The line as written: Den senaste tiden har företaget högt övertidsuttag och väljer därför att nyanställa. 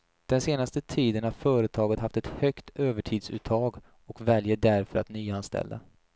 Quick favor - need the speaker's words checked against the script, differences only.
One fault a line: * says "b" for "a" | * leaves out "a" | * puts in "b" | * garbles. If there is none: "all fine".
* puts in "haft ett"